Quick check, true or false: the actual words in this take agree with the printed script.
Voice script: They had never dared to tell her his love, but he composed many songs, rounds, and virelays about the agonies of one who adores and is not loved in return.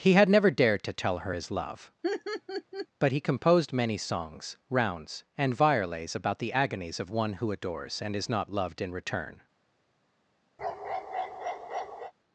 false